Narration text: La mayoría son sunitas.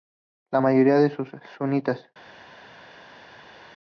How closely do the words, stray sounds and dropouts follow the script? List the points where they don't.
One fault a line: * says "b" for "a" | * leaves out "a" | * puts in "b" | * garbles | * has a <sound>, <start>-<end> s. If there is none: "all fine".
all fine